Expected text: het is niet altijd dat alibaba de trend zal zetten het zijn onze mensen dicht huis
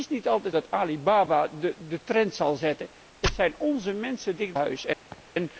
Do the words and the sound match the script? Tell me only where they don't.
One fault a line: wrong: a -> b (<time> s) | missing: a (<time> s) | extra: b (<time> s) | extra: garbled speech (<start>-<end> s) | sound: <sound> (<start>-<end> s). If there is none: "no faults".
sound: laugh (5.1-5.3 s)